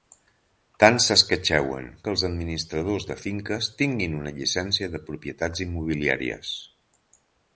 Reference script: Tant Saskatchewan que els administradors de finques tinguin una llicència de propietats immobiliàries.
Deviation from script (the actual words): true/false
false